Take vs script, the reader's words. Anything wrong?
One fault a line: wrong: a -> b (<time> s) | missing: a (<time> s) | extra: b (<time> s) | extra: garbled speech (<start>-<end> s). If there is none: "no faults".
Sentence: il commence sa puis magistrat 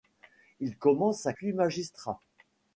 no faults